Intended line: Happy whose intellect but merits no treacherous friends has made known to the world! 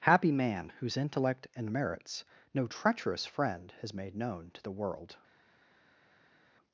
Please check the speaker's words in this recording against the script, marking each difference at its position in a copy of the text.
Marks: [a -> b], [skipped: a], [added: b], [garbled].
Happy [added: man] whose intellect [but -> and] merits no treacherous [friends -> friend] has made known to the world!